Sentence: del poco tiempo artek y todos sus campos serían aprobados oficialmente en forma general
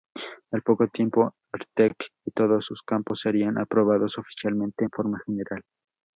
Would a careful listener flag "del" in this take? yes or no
yes